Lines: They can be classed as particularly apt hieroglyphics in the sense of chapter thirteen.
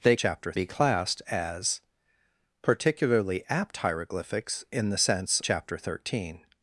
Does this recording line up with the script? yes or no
no